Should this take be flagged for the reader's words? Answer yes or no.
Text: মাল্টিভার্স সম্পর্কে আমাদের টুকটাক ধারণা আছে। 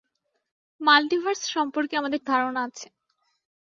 yes